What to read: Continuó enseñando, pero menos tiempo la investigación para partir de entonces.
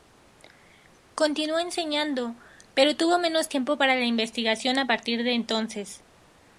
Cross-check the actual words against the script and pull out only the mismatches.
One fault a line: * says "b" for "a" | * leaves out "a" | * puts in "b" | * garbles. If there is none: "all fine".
* puts in "tuvo"
* puts in "para"
* says "a" for "para"